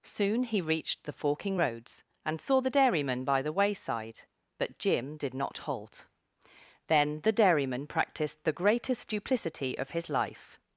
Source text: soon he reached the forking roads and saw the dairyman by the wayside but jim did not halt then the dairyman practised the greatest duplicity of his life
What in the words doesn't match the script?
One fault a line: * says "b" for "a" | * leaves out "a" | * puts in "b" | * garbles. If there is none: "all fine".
all fine